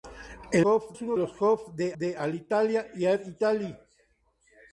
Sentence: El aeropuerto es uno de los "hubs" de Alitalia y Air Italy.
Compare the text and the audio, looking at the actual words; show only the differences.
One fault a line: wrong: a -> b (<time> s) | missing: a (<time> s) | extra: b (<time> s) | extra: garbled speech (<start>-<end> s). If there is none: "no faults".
wrong: aeropuerto -> hubs (0.6 s)
missing: de (1.2 s)
extra: de (2.0 s)